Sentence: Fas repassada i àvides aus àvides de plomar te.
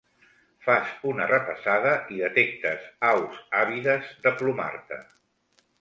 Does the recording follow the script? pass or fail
fail